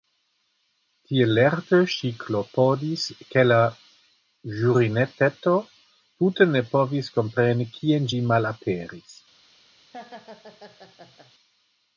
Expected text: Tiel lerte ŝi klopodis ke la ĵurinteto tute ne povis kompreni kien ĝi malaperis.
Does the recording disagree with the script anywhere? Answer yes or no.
no